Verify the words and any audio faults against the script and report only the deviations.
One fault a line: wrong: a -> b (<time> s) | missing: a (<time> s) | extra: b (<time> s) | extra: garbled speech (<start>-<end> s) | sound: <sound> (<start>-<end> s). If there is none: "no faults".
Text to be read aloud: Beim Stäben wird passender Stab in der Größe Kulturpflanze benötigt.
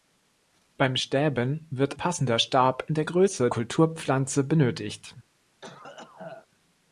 sound: cough (5.6-6.5 s)